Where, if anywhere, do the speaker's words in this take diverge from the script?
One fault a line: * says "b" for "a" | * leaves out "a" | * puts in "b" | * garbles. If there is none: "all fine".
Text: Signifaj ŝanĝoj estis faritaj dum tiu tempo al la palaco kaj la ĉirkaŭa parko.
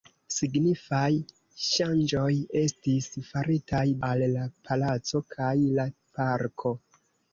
* leaves out "dum tiu tempo"
* leaves out "ĉirkaŭa"